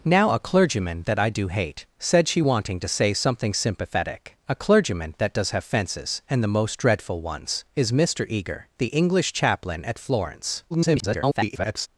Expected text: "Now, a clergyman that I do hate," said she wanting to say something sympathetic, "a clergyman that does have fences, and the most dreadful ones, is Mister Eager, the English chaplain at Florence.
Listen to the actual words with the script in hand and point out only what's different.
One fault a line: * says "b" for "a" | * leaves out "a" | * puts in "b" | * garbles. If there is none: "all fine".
* garbles